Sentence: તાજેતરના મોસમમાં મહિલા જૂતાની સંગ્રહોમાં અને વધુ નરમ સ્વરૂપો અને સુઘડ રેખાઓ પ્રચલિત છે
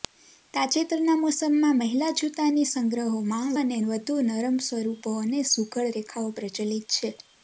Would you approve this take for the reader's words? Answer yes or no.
yes